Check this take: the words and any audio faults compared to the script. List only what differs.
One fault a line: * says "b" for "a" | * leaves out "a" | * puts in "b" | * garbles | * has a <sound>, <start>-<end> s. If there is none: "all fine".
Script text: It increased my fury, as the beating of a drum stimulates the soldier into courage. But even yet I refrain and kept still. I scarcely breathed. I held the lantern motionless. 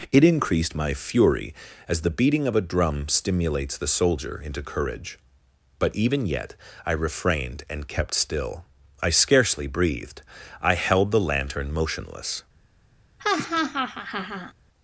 * says "refrained" for "refrain"
* has a laugh, 13.2-14.5 s